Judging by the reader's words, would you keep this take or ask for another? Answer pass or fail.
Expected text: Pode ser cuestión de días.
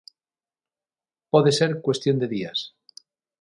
pass